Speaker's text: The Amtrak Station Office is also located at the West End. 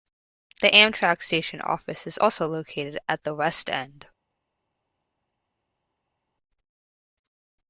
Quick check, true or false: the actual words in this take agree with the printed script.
true